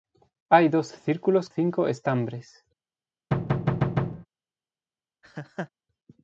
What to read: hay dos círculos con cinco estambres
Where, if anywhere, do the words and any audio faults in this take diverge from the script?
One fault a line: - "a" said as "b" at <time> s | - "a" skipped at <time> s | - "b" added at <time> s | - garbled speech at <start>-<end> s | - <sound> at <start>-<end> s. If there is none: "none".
- "con" skipped at 1.5 s
- thud at 3.3-4.3 s
- laugh at 5.2-5.7 s